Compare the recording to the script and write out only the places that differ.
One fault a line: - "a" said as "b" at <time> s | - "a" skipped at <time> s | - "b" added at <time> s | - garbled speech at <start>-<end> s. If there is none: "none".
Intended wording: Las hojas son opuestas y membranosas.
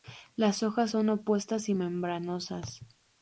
none